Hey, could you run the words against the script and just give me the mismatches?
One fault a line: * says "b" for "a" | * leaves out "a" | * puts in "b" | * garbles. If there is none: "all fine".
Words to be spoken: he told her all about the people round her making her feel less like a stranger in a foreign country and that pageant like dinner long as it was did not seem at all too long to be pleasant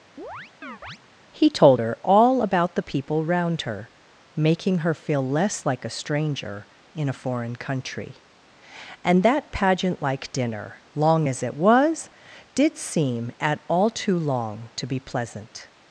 * leaves out "not"